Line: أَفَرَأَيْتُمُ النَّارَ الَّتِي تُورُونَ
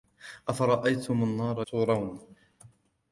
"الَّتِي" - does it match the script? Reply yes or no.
no